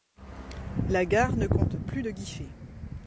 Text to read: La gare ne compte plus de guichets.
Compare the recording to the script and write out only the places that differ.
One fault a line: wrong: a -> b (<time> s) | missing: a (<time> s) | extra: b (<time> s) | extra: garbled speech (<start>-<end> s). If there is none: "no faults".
no faults